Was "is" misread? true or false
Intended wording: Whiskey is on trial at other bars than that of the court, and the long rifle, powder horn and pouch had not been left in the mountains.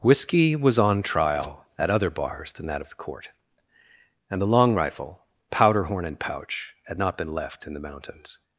true